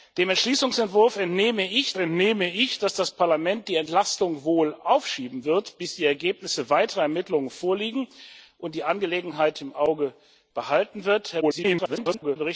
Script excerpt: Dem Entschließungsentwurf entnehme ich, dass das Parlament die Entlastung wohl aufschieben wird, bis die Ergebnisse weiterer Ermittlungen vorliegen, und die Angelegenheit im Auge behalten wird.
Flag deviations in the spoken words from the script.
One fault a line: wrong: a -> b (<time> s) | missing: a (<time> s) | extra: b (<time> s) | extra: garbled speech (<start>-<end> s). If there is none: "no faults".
extra: entnehme ich (2.0 s)
extra: garbled speech (11.4-12.4 s)